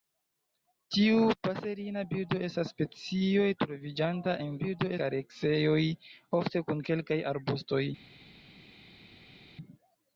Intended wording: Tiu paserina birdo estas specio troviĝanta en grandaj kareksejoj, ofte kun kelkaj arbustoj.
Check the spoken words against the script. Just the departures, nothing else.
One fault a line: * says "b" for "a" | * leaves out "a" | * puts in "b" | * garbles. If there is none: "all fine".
* says "birdo" for "grandaj"